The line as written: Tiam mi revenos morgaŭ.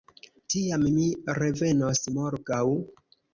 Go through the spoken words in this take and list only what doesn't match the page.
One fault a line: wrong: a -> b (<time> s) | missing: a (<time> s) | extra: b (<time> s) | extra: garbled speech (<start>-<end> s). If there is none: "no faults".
no faults